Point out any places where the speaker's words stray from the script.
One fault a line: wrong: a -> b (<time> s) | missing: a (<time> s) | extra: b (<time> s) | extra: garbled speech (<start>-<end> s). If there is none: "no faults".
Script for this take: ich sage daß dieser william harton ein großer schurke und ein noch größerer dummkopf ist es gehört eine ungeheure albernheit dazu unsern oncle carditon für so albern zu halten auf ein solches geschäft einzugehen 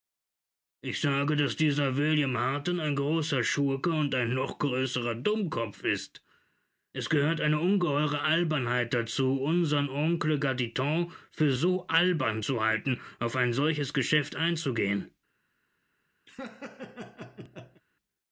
no faults